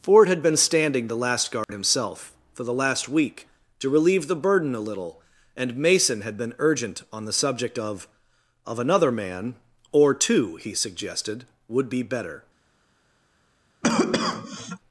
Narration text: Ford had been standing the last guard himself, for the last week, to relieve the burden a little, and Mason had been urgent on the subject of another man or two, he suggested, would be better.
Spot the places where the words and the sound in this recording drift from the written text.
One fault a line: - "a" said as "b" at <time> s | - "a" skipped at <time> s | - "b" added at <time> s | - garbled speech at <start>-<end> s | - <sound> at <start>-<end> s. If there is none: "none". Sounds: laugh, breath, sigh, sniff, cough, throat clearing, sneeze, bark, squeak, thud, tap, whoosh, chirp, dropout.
- dropout at 1.6-1.7 s
- "of" added at 8.6 s
- cough at 13.8-14.8 s